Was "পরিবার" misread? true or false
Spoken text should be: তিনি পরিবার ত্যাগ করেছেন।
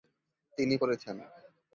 true